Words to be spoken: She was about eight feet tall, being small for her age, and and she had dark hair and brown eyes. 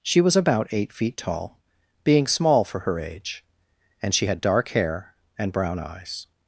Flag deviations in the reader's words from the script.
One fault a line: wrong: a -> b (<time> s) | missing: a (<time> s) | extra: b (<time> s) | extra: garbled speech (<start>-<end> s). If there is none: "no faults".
missing: and (4.1 s)